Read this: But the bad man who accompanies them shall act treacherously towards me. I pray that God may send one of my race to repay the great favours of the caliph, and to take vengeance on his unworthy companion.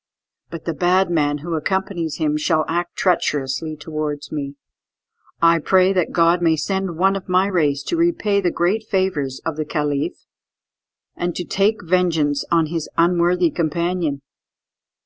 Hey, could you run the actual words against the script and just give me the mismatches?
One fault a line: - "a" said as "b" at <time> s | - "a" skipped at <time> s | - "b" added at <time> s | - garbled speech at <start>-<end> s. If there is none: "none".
- "them" said as "him" at 2.2 s